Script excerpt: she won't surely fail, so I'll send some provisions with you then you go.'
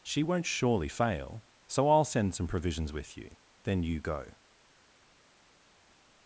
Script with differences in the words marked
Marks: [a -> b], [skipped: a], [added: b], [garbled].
she won't surely fail, so I'll send some provisions with you then you go.'